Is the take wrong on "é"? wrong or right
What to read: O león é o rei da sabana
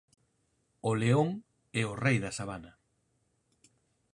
right